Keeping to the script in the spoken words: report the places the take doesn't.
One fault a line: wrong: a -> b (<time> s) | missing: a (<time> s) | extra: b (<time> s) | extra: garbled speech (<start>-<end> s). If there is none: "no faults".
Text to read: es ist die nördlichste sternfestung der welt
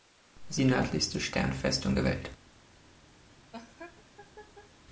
missing: ist (0.6 s)